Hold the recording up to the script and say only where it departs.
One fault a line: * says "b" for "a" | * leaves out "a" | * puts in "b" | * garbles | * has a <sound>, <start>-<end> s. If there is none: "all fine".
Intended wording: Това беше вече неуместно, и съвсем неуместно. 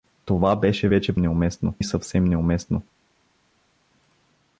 all fine